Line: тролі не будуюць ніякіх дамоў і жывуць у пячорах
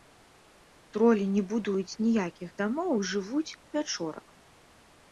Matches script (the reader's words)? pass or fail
pass